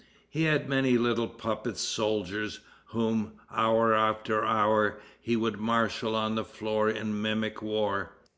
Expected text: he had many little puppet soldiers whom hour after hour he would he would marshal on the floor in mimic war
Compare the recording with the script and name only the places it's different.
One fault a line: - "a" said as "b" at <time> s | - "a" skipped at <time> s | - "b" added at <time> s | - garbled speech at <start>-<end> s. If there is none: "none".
- "he would" skipped at 5.6 s